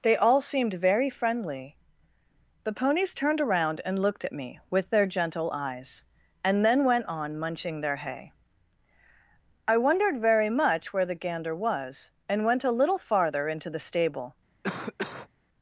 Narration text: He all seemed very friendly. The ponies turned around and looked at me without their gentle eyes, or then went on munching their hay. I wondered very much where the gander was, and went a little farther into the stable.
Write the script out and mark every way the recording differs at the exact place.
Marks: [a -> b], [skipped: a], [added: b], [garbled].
[He -> They] all seemed very friendly. The ponies turned around and looked at me [without -> with] their gentle eyes, [or -> and] then went on munching their hay. I wondered very much where the gander was, and went a little farther into the stable.